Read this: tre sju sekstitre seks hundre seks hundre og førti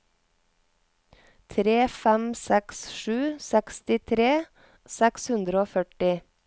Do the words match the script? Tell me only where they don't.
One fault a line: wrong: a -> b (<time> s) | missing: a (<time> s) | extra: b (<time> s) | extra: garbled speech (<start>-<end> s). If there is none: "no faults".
extra: fem seks (2.0 s)
missing: seks hundre (5.6 s)